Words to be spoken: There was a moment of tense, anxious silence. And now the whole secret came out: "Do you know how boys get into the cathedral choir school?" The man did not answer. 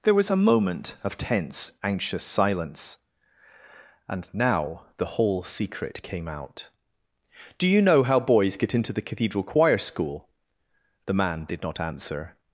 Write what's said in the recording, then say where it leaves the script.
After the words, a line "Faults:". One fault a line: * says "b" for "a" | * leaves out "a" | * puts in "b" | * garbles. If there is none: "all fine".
There was a moment of tense, anxious silence. And now the whole secret came out: "Do you know how boys get into the cathedral choir school?" The man did not answer.
Faults:
all fine